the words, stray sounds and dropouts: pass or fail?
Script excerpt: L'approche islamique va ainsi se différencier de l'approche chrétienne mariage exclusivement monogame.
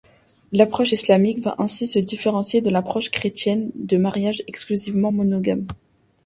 fail